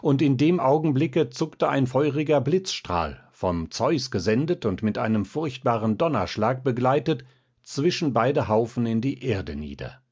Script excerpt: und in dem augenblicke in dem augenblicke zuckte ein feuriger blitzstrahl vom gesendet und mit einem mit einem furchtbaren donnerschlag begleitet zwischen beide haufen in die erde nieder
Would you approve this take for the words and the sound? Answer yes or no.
no